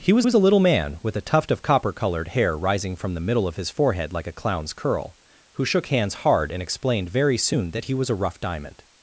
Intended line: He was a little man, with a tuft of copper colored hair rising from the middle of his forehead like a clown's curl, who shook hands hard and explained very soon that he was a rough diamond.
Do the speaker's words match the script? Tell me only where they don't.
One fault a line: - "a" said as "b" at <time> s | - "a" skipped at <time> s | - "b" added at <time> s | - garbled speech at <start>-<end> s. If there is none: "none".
- "was" added at 0.2 s